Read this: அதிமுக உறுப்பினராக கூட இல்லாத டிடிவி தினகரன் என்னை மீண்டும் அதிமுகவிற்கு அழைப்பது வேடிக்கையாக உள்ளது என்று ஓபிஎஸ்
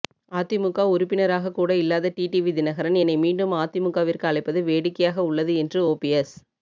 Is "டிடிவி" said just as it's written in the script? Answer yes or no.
yes